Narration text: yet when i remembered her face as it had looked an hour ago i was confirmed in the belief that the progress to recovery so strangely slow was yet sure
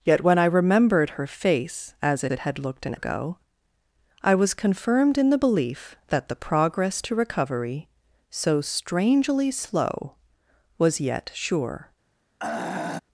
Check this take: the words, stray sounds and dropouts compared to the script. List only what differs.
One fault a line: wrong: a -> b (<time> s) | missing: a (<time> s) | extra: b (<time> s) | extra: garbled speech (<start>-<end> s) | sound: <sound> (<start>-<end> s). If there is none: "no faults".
extra: it (2.3 s)
missing: hour (3.0 s)
sound: throat clearing (12.4-13.0 s)